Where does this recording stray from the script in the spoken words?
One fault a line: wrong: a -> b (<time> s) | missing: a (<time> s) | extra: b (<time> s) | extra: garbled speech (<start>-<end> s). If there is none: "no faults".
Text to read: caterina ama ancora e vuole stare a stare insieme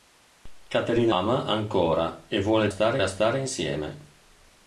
no faults